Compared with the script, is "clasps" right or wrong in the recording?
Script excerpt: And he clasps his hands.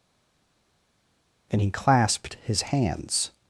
wrong